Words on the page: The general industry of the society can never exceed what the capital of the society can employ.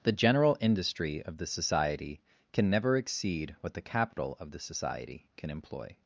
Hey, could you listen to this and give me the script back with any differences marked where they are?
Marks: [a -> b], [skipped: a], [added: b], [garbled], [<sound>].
The general industry of the society can never exceed what the capital [dropout] of the society can employ.